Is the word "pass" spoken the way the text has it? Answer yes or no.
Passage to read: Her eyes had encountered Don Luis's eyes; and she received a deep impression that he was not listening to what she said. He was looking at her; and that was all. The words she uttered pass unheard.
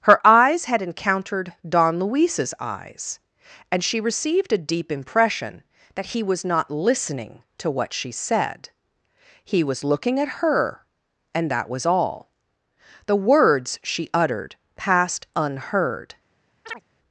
no